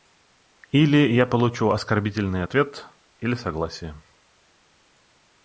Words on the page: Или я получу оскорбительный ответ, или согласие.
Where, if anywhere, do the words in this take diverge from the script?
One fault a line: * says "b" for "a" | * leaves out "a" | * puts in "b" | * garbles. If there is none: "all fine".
all fine